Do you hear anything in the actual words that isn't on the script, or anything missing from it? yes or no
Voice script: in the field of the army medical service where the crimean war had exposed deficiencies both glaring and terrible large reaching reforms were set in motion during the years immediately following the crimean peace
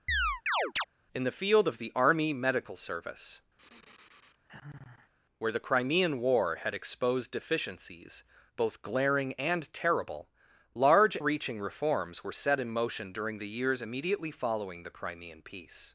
no